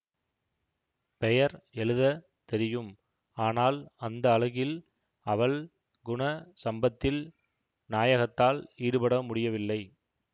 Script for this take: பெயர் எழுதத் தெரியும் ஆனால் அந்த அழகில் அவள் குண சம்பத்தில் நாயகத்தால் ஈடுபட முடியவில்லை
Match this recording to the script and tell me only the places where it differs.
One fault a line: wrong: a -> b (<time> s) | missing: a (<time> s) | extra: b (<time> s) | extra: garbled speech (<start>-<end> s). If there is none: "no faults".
no faults